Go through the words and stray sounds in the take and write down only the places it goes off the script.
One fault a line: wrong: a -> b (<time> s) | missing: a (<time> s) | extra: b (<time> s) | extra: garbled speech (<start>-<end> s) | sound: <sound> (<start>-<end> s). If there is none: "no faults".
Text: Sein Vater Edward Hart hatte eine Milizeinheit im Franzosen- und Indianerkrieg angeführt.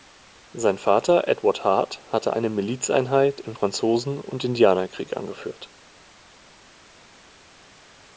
no faults